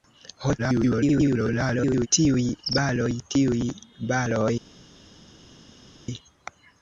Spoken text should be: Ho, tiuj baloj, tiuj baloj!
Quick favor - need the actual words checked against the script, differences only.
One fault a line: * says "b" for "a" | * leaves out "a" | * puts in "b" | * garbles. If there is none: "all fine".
* garbles